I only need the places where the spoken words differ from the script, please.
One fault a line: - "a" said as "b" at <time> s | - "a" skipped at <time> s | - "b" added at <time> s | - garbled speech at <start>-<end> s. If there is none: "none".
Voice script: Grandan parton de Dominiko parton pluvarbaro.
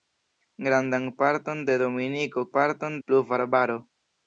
none